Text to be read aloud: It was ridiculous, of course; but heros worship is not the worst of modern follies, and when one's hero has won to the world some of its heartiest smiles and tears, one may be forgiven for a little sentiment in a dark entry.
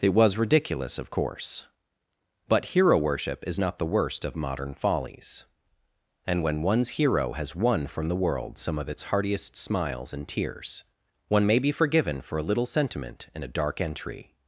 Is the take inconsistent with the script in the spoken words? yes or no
yes